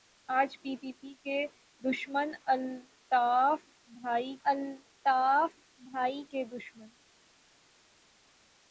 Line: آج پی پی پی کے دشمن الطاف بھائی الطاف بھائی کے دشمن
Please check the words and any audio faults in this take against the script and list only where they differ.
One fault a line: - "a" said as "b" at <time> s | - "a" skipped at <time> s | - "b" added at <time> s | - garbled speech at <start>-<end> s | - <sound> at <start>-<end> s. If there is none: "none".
none